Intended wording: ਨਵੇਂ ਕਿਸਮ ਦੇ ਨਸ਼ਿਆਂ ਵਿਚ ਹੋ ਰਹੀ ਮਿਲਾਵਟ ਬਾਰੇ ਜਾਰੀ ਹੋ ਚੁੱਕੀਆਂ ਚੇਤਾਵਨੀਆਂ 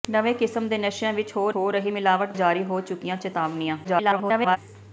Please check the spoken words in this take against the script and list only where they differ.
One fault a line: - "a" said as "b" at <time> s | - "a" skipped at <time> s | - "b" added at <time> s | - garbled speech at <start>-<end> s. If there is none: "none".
- "ਹੋ" added at 1.5 s
- "ਬਾਰੇ" skipped at 2.3 s
- garbled speech at 3.8-4.6 s